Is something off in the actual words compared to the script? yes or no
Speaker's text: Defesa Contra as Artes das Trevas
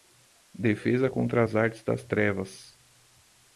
no